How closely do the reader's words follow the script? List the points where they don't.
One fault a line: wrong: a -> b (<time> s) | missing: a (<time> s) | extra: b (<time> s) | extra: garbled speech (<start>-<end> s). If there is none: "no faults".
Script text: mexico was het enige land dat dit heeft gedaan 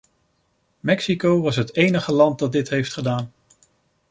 no faults